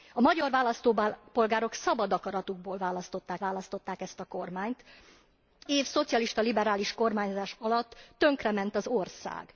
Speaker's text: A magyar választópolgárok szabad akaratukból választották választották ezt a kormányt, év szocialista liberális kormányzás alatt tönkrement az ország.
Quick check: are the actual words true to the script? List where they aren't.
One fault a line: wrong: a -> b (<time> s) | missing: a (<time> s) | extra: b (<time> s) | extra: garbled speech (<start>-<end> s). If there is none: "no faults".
no faults